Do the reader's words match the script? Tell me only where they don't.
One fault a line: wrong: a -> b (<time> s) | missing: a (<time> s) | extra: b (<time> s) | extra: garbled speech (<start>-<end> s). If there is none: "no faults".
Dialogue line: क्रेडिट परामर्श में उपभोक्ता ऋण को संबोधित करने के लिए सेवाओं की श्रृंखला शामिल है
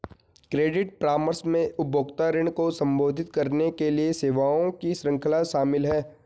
no faults